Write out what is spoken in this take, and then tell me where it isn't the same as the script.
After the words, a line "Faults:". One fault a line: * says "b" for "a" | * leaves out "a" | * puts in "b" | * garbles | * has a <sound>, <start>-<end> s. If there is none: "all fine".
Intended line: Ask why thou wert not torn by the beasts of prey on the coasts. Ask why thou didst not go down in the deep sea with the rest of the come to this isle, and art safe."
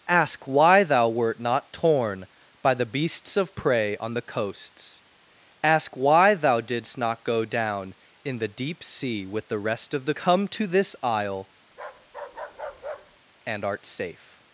Ask why thou wert not torn by the beasts of prey on the coasts. Ask why thou didst not go down in the deep sea with the rest of the come to this isle, and art safe."
Faults:
* has a bark, 11.7-13.2 s